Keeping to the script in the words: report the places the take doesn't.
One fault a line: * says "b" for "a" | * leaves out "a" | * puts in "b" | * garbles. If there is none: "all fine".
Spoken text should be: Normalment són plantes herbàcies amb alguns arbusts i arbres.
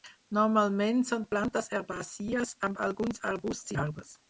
all fine